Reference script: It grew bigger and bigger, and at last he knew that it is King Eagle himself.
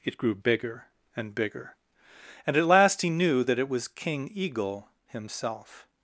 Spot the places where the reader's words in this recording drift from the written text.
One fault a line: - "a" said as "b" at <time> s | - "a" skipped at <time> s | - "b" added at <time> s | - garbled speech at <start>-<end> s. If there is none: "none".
- "is" said as "was" at 3.7 s